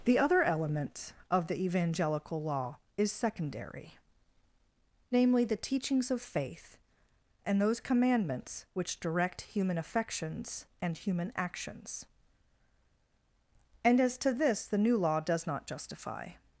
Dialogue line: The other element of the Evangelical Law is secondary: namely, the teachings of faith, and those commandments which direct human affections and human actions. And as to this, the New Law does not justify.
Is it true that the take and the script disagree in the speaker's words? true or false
false